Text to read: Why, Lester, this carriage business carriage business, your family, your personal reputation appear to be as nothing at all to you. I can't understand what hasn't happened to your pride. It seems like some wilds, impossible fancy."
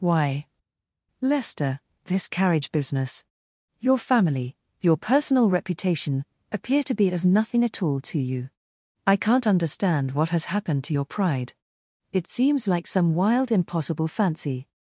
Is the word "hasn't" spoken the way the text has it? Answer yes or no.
no